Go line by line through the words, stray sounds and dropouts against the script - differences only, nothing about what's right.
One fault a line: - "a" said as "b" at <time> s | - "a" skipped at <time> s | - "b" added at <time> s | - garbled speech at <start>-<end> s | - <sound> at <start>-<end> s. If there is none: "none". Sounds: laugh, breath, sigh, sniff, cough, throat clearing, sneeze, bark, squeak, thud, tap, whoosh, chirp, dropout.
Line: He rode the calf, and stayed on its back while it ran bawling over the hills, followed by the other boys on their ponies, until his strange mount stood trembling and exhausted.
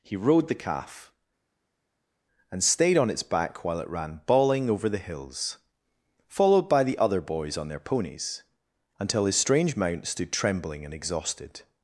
none